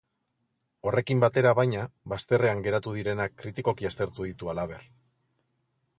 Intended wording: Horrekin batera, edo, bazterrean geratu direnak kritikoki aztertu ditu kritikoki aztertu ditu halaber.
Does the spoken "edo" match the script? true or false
false